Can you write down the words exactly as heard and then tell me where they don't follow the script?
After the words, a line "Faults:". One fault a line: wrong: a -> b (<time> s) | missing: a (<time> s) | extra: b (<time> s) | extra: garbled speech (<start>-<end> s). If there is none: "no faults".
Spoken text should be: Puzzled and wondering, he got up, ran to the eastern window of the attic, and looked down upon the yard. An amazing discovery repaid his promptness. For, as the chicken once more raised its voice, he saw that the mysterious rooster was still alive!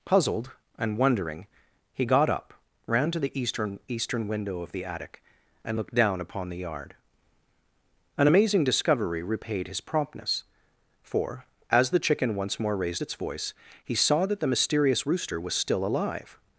Puzzled and wondering, he got up, ran to the eastern eastern window of the attic, and looked down upon the yard. An amazing discovery repaid his promptness. For, as the chicken once more raised its voice, he saw that the mysterious rooster was still alive!
Faults:
extra: eastern (3.9 s)